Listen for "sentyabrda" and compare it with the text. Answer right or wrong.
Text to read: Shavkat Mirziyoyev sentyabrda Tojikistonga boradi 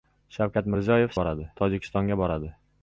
wrong